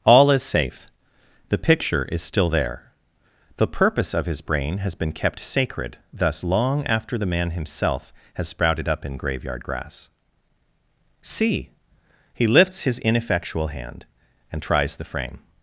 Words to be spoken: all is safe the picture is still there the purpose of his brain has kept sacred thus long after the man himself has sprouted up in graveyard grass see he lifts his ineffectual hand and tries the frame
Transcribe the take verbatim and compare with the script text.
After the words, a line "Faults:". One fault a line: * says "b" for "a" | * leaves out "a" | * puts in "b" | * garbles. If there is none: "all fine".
all is safe the picture is still there the purpose of his brain has been kept sacred thus long after the man himself has sprouted up in graveyard grass see he lifts his ineffectual hand and tries the frame
Faults:
* puts in "been"